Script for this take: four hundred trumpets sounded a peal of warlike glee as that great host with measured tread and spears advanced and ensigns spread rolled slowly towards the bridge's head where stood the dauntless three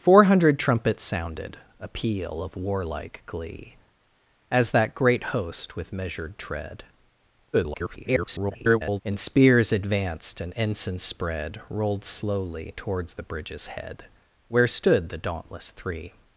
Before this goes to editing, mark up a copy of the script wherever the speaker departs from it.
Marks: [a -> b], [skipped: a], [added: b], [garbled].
four hundred trumpets sounded a peal of warlike glee as that great host with measured tread [garbled] and spears advanced and ensigns spread rolled slowly towards the bridge's head where stood the dauntless three